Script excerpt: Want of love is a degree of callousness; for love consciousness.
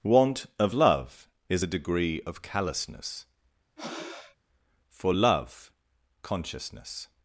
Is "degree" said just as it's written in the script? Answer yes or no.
yes